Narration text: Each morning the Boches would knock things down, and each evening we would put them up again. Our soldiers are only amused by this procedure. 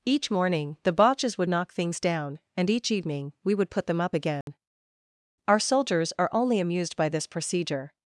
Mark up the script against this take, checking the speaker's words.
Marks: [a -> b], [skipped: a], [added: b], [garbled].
Each morning the Boches would knock things down, and each evening we would put them up again. Our soldiers are only amused by this procedure.